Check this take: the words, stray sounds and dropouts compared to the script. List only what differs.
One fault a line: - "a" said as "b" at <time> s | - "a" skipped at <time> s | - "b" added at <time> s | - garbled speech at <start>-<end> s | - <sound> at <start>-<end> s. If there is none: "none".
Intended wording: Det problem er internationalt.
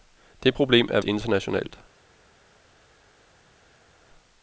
none